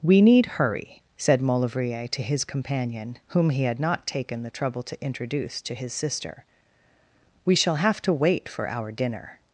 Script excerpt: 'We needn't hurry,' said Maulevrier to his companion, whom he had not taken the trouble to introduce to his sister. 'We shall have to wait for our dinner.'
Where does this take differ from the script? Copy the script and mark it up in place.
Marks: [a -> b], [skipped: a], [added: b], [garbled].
'We [needn't -> need] hurry,' said Maulevrier to his companion, whom he had not taken the trouble to introduce to his sister. 'We shall have to wait for our dinner.'